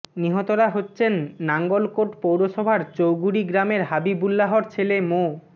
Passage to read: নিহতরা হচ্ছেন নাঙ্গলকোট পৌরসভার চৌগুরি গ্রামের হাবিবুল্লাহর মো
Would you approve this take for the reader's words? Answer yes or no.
no